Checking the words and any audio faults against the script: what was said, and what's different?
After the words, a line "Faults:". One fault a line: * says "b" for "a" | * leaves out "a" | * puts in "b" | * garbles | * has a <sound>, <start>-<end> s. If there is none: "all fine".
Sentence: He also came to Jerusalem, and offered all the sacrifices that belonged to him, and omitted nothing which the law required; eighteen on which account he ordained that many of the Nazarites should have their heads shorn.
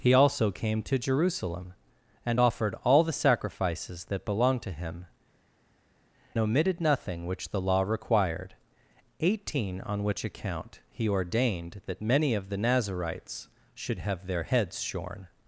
He also came to Jerusalem, and offered all the sacrifices that belonged to him, omitted nothing which the law required; eighteen on which account he ordained that many of the Nazarites should have their heads shorn.
Faults:
* leaves out "and"